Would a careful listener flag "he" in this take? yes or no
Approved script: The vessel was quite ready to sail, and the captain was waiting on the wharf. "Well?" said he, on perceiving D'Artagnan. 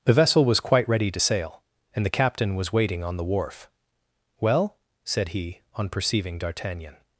no